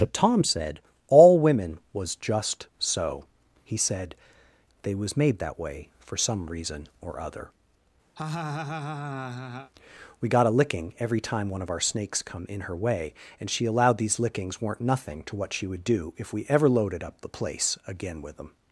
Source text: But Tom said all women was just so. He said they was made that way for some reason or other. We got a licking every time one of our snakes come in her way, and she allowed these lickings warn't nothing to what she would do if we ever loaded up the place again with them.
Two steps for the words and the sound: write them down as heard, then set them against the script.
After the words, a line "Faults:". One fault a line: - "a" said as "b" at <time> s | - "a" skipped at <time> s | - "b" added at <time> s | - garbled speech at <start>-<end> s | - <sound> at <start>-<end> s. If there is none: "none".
But Tom said all women was just so. He said they was made that way for some reason or other. We got a licking every time one of our snakes come in her way, and she allowed these lickings weren't nothing to what she would do if we ever loaded up the place again with them.
Faults:
- laugh at 8.2-9.7 s
- "warn't" said as "weren't" at 14.6 s